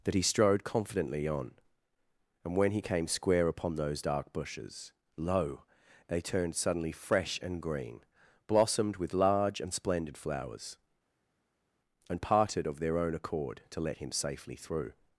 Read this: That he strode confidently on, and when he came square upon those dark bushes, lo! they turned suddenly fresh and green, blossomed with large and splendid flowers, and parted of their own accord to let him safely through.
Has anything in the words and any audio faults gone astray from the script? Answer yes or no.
no